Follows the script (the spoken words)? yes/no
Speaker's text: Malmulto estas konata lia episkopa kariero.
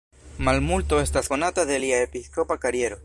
no